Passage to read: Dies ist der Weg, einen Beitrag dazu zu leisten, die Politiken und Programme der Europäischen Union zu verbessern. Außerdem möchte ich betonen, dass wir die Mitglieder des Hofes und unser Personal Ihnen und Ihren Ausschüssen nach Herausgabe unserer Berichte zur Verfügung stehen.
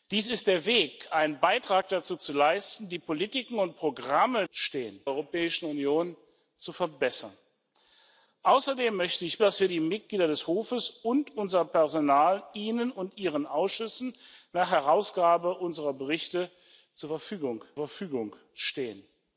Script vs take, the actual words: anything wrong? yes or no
yes